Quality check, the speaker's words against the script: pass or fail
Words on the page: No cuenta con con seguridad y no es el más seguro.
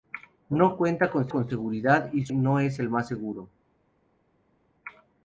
pass